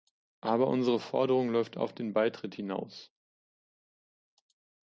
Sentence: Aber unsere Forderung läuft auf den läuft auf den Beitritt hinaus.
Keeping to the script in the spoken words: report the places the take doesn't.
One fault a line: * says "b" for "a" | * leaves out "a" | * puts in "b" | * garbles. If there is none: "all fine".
* leaves out "läuft auf den"